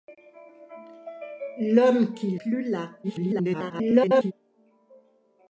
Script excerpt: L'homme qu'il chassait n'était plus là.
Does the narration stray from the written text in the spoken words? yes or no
yes